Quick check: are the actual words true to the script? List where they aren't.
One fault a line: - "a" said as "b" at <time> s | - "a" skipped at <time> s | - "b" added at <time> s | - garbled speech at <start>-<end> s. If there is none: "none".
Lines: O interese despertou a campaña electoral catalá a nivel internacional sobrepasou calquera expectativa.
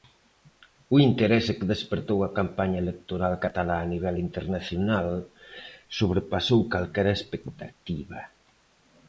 - "que" added at 1.6 s